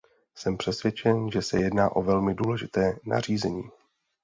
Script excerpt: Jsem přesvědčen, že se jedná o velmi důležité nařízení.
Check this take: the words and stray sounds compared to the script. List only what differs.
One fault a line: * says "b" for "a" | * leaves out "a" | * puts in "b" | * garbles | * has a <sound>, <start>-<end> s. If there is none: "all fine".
all fine